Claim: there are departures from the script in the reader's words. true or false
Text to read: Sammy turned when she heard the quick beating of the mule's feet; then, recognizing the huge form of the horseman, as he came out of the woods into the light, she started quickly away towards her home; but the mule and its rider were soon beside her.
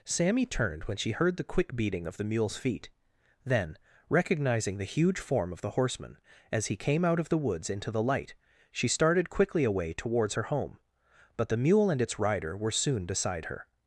false